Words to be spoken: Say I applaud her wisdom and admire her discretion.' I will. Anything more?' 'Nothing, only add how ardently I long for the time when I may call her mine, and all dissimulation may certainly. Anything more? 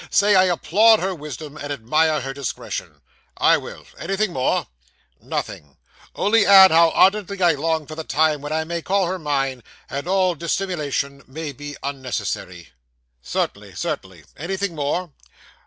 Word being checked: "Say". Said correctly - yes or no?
yes